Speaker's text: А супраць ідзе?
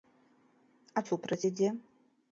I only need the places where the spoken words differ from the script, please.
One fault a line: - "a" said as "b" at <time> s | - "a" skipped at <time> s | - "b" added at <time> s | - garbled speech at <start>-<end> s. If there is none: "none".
none